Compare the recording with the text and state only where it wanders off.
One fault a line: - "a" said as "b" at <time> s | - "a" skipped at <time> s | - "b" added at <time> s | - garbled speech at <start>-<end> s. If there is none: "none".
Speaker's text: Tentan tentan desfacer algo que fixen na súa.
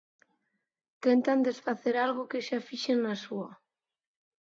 - "tentan" skipped at 1.4 s
- "xa" added at 2.5 s